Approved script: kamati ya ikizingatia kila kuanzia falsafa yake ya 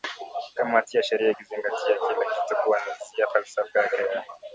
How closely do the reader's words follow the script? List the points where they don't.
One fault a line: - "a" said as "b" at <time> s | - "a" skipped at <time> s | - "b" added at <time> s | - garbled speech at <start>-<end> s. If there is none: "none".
- "sheria" added at 1.0 s
- "kitu" added at 2.2 s